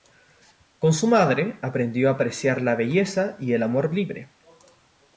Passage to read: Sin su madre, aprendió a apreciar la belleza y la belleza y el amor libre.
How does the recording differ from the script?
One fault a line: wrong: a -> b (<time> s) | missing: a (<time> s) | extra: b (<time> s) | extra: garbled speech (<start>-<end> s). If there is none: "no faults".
wrong: Sin -> Con (0.8 s)
missing: la belleza y (3.5 s)